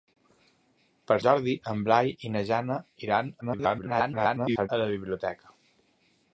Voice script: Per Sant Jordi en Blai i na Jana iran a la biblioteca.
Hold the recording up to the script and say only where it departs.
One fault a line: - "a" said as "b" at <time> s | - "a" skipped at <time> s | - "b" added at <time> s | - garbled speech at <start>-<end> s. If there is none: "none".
- "Sant" skipped at 1.2 s
- garbled speech at 3.4-4.7 s